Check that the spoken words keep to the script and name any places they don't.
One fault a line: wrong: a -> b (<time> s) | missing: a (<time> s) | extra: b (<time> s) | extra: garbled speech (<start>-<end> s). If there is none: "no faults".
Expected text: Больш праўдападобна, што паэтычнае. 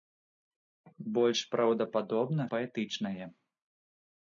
missing: што (2.4 s)